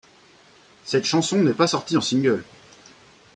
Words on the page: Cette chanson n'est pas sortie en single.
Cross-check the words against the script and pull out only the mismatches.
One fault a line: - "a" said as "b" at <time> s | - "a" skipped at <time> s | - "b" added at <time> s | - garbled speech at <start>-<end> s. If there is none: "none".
none